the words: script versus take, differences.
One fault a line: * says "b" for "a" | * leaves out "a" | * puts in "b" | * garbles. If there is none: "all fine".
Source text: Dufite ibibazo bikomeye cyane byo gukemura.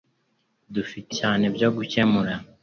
* leaves out "ibibazo bikomeye"